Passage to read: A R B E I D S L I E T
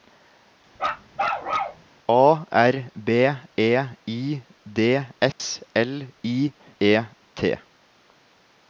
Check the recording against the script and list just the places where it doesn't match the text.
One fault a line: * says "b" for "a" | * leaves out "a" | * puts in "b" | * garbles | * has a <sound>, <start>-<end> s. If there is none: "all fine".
* has a bark, 0.8-1.8 s
* has a dropout, 5.3-5.4 s